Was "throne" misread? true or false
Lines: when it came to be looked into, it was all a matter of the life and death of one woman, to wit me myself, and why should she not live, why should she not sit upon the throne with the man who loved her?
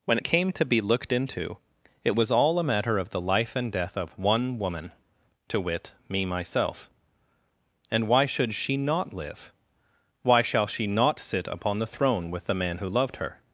false